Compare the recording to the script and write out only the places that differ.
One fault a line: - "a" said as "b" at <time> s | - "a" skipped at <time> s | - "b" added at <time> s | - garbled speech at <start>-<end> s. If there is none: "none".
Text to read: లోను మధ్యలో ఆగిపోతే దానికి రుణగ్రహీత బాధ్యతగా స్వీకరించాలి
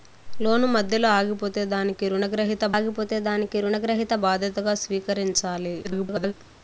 - "ఆగిపోతే దానికి రుణగ్రహీత" added at 2.7 s
- garbled speech at 5.8-6.3 s